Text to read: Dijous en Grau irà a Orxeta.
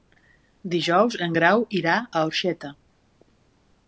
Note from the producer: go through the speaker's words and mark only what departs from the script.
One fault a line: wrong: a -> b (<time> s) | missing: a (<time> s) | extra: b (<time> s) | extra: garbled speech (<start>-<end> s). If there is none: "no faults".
no faults